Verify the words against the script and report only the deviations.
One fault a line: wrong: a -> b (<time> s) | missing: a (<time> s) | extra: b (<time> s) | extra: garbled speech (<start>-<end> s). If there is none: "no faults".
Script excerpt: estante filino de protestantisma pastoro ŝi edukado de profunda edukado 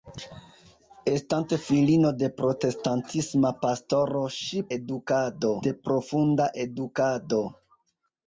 no faults